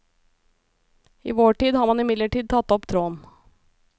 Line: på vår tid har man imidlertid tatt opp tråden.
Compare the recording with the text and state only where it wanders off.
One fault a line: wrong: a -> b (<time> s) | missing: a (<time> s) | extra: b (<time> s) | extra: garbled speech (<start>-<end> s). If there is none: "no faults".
wrong: på -> I (1.2 s)